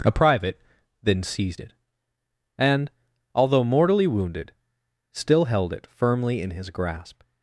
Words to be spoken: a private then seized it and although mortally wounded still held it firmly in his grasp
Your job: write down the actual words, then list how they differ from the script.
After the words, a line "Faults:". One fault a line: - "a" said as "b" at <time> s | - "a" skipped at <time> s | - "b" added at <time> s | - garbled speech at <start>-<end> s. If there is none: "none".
a private then seized it and although mortally wounded still held it firmly in his grasp
Faults:
none